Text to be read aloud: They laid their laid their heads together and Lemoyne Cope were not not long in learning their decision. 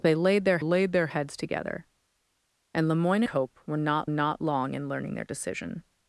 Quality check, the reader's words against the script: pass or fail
pass